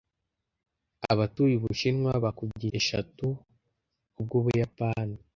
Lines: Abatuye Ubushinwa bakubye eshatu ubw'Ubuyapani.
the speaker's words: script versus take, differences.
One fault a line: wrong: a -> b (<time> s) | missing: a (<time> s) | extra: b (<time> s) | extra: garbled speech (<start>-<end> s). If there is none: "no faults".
no faults